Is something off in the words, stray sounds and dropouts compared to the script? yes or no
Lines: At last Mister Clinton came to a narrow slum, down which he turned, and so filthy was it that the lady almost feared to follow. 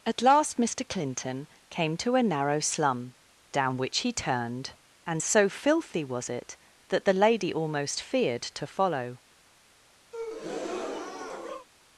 yes